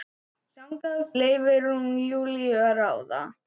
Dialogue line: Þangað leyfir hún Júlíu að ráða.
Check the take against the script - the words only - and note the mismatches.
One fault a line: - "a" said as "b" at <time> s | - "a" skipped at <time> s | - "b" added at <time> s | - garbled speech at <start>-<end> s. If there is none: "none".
none